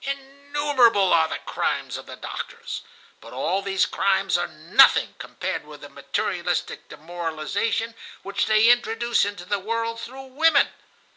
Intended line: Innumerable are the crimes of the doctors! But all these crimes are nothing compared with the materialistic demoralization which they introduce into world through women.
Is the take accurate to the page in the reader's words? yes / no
no